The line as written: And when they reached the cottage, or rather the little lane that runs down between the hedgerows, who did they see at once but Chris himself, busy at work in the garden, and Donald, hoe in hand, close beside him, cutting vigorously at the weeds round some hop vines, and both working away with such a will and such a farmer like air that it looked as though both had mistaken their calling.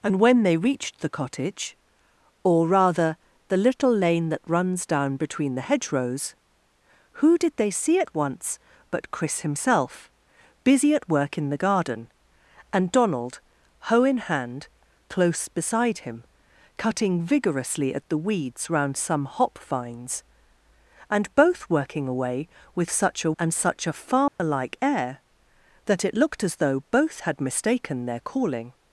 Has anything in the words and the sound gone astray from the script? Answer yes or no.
yes